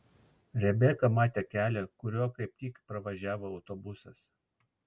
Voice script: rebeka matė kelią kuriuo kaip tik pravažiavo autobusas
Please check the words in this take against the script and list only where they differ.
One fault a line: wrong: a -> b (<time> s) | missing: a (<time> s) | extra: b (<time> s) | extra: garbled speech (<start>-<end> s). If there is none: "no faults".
no faults